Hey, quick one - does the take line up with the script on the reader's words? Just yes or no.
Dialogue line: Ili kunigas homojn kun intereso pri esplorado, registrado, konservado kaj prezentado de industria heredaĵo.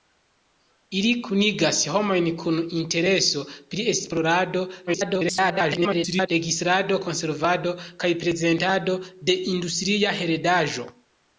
no